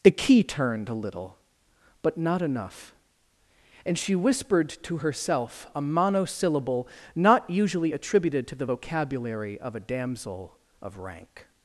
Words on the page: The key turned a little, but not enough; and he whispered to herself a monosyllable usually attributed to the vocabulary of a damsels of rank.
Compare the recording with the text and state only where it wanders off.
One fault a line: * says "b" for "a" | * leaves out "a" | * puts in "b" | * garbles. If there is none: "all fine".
* says "she" for "he"
* puts in "not"
* says "damsel" for "damsels"